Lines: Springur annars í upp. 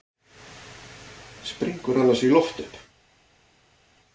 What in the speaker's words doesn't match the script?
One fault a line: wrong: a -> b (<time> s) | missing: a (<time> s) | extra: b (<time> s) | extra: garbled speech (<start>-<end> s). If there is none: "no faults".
extra: loft (2.3 s)